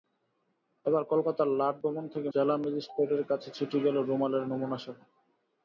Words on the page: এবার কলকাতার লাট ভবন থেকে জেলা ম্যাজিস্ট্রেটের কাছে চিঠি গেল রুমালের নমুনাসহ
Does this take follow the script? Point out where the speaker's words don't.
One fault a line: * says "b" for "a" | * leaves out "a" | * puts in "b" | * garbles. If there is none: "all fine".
all fine